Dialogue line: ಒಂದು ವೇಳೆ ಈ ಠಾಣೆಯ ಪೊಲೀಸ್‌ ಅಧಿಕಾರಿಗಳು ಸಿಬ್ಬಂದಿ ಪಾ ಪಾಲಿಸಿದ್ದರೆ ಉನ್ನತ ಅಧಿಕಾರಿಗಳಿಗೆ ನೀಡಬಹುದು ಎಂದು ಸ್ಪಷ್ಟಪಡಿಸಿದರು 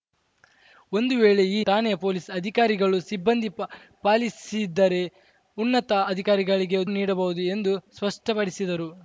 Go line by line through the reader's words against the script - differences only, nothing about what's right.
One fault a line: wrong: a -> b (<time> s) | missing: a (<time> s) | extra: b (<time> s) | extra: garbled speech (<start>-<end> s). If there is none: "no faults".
no faults